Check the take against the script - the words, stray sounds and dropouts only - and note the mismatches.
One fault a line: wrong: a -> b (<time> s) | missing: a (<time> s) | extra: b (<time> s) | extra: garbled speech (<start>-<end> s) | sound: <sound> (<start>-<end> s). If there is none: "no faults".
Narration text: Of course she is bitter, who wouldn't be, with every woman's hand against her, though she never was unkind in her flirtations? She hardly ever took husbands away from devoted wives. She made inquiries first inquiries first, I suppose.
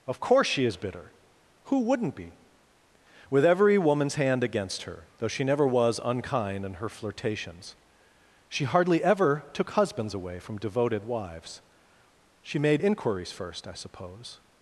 missing: inquiries first (13.7 s)